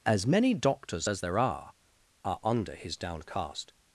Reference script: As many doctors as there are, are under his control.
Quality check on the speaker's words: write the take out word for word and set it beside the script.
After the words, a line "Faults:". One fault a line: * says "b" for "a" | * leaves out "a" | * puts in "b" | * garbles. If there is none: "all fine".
As many doctors as there are, are under his downcast.
Faults:
* says "downcast" for "control"